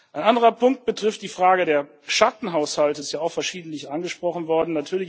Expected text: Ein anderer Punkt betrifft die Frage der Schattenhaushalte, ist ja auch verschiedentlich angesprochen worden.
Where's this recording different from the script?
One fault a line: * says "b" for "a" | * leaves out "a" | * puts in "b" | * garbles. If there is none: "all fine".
all fine